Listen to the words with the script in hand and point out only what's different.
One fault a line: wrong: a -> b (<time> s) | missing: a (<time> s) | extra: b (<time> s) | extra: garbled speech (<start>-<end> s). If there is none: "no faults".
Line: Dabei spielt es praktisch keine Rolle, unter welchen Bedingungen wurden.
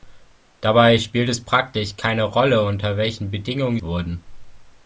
no faults